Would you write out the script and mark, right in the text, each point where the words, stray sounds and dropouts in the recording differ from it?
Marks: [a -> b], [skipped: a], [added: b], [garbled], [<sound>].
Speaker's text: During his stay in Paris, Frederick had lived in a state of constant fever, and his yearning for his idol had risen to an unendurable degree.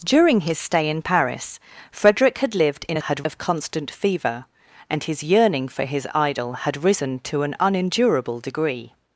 During his stay in Paris, Frederick had lived in a [state -> had] of constant fever, and his yearning for his idol had risen to an unendurable degree.